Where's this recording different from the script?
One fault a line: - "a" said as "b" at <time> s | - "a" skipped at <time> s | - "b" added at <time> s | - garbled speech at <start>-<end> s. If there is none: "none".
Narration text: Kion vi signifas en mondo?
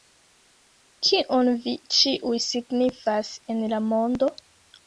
- "ĉiuj" added at 2.0 s
- "la" added at 3.7 s